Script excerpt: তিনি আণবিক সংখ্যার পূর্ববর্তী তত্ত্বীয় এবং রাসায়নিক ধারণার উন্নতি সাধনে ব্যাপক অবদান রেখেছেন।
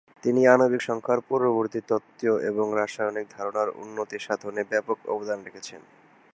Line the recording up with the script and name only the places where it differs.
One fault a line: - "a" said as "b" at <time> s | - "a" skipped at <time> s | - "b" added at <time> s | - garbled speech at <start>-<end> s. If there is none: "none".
none